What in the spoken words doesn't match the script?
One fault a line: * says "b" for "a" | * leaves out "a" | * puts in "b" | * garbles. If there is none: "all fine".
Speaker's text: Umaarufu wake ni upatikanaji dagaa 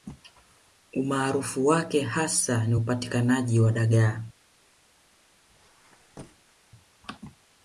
* puts in "hasa"
* puts in "wa"